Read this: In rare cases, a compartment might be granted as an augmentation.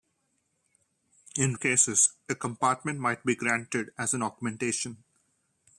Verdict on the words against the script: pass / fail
fail